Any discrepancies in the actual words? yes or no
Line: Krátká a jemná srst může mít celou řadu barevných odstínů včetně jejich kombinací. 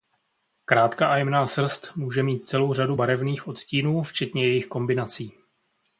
no